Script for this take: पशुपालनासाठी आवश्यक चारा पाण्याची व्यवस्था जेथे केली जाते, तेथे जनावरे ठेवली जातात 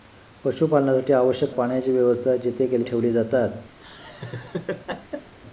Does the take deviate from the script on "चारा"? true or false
true